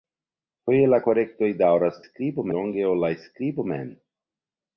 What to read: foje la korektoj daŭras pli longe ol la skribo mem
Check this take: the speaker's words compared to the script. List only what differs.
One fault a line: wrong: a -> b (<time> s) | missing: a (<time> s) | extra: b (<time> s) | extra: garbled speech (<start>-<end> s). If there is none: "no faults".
wrong: pli -> skribo (2.1 s)